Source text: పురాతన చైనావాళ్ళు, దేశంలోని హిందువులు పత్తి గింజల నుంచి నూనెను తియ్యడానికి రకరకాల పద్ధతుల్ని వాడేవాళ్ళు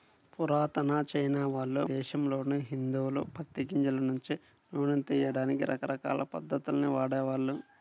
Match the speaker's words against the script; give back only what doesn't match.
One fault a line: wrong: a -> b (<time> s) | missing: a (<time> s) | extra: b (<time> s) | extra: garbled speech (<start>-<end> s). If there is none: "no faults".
no faults